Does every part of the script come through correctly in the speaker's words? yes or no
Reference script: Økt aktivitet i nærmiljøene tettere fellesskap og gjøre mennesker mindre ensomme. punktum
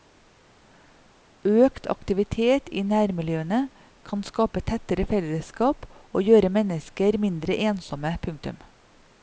no